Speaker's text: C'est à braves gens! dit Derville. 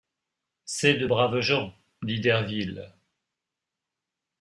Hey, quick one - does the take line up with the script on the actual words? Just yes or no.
no